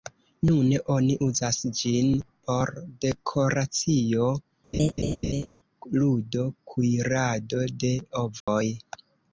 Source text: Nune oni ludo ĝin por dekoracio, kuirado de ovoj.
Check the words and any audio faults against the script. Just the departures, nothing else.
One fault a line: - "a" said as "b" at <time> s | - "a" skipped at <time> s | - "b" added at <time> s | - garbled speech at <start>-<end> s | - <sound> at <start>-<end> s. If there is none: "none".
- "ludo" said as "uzas" at 1.2 s
- laugh at 4.7-5.5 s
- "ludo" added at 6.0 s
- dropout at 8.4-8.5 s